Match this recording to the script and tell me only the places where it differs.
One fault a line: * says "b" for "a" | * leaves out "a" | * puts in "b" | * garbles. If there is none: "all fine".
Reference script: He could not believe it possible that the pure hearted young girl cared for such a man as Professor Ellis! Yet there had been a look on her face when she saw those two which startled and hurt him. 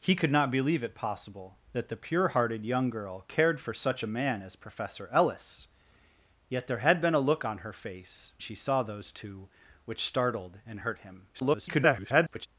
* leaves out "when"
* garbles